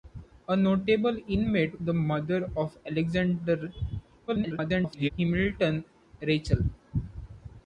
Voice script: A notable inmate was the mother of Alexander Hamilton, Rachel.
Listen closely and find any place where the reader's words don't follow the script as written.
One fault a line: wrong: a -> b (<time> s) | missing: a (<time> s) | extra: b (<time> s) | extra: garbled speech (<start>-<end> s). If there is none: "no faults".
missing: was (1.8 s)
extra: garbled speech (4.3-5.1 s)